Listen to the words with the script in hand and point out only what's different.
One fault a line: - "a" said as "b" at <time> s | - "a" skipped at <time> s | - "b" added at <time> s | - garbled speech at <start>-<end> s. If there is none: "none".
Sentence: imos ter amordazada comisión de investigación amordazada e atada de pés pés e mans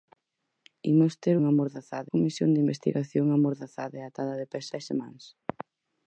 none